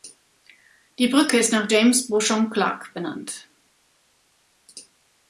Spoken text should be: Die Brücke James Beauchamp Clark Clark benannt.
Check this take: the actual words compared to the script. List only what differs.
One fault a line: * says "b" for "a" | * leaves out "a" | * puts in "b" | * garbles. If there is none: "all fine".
* puts in "ist nach"
* leaves out "Clark"